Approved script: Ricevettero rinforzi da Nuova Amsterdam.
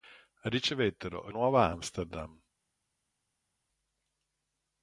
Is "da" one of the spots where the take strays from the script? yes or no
yes